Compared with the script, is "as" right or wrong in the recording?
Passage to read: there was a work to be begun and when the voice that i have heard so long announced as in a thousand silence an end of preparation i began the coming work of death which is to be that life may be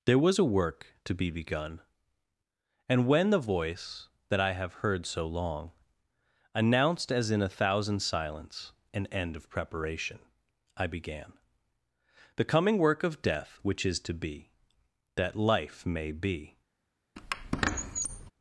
right